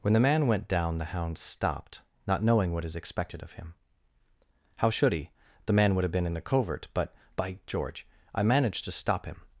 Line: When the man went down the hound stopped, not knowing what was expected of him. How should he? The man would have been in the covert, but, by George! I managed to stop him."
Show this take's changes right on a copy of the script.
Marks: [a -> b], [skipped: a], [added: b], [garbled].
When the man went down the hound stopped, not knowing what [was -> is] expected of him. How should he? The man would have been in the covert, but, by George! I managed to stop him."